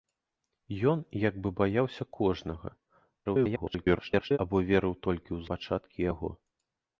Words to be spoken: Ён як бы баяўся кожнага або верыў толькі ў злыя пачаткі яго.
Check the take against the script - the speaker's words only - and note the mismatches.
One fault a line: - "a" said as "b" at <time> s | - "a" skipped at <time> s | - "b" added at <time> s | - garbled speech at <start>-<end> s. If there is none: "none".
- garbled speech at 3.2-4.4 s
- "злыя" skipped at 5.4 s